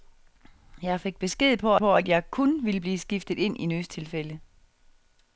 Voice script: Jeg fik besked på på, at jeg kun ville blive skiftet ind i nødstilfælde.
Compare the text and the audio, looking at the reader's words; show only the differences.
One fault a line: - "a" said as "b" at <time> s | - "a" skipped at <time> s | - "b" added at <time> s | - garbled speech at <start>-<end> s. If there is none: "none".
none